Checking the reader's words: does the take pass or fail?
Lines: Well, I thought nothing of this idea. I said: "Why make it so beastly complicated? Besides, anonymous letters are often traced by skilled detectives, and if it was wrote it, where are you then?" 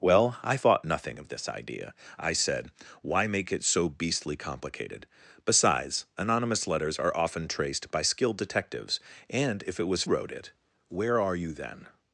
pass